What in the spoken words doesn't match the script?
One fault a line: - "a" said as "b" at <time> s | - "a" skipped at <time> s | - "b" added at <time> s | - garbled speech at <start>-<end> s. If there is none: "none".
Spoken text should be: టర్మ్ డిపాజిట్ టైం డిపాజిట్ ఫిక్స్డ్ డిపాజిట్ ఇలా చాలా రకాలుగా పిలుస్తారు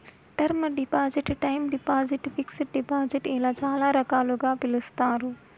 none